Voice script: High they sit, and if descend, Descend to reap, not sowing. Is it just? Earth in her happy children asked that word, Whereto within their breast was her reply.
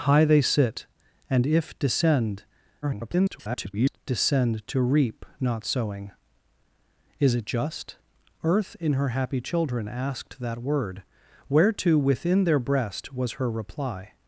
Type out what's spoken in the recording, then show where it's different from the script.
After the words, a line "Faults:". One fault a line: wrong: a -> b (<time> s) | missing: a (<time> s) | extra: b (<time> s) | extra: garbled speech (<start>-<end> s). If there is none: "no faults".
High they sit, and if descend, [garbled] Descend to reap, not sowing. Is it just? Earth in her happy children asked that word, Whereto within their breast was her reply.
Faults:
extra: garbled speech (2.8-4.0 s)